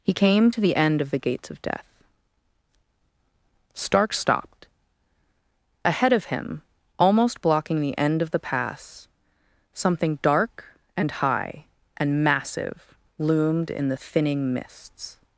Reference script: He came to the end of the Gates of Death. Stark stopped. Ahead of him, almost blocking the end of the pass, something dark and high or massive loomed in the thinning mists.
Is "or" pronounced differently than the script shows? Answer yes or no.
yes